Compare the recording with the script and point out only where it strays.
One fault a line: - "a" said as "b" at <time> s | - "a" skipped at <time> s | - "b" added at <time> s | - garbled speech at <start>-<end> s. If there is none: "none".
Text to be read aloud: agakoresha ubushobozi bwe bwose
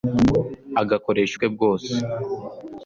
- "ubushobozi" skipped at 1.4 s